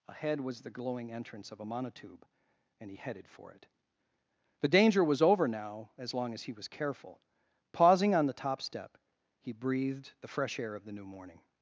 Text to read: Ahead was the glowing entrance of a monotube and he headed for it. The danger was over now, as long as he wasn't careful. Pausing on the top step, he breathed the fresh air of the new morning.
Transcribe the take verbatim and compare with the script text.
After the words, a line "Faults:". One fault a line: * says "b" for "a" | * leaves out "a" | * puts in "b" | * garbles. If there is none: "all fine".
Ahead was the glowing entrance of a monotube and he headed for it. The danger was over now, as long as he was careful. Pausing on the top step, he breathed the fresh air of the new morning.
Faults:
* says "was" for "wasn't"